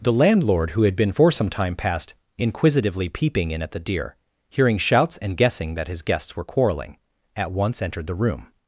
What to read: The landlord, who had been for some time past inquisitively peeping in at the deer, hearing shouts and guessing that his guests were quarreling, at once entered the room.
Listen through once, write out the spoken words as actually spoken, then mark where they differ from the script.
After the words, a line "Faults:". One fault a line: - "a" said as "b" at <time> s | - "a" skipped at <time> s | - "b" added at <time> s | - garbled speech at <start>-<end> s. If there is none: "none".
The landlord, who had been for some time past inquisitively peeping in at the deer, hearing shouts and guessing that his guests were quarreling, at once entered the room.
Faults:
none